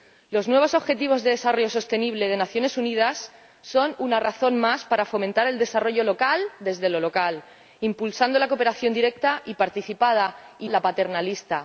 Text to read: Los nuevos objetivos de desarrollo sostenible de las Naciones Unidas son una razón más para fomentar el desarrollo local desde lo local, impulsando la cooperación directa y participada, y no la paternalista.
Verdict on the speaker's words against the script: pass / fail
fail